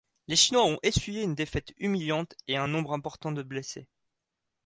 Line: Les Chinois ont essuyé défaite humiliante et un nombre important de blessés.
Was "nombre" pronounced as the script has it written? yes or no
yes